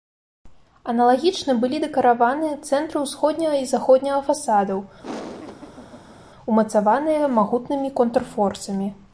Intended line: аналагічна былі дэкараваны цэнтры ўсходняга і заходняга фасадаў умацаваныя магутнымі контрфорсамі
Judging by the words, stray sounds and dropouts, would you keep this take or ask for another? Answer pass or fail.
fail